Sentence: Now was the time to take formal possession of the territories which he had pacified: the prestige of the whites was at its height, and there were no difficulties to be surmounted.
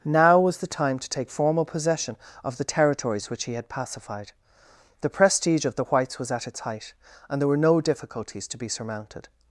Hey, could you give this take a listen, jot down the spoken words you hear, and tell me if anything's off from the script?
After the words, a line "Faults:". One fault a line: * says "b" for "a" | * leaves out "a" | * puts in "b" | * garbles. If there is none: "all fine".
Now was the time to take formal possession of the territories which he had pacified: the prestige of the whites was at its height, and there were no difficulties to be surmounted.
Faults:
all fine